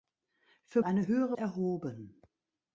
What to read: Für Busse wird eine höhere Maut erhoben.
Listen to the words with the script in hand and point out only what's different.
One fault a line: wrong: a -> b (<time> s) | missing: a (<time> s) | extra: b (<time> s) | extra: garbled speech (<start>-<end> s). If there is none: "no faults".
missing: Busse wird (0.8 s)
missing: Maut (1.4 s)